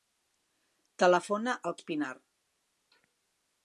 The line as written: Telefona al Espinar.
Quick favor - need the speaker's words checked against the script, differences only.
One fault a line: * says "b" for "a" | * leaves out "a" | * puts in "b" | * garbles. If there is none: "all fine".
all fine